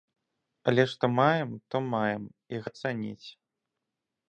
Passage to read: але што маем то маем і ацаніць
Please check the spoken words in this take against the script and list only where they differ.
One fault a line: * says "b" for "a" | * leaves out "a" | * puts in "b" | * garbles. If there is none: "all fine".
all fine